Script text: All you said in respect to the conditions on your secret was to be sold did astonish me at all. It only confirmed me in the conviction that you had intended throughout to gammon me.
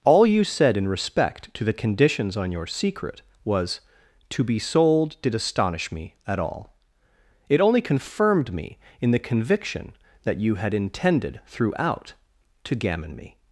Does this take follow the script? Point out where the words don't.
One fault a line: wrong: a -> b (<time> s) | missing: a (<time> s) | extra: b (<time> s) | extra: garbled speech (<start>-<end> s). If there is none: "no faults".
no faults